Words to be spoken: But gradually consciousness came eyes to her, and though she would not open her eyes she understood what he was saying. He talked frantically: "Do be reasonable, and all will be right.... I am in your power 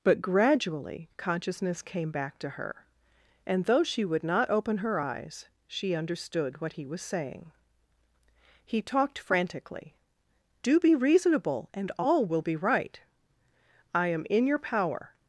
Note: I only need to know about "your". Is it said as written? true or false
true